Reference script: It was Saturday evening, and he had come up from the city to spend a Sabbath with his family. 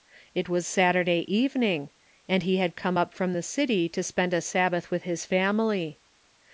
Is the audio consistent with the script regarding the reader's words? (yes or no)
yes